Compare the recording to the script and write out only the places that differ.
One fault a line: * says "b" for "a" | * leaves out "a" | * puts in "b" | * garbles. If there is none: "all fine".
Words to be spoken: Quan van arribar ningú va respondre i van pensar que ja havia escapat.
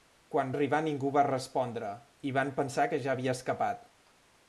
* leaves out "van"